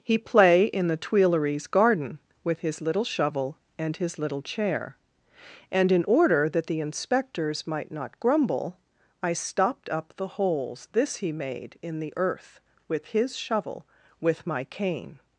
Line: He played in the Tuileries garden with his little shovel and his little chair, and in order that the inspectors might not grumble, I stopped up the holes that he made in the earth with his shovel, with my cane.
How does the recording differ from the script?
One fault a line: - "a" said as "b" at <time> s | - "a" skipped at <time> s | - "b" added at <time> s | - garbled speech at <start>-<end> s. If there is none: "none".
- "played" said as "play" at 0.2 s
- "that" said as "this" at 10.9 s